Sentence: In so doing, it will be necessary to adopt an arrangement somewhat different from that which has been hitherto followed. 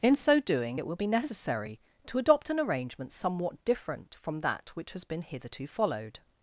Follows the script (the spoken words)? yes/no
yes